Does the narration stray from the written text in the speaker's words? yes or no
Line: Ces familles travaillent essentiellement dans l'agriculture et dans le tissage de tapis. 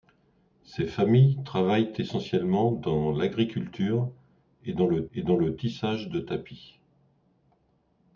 yes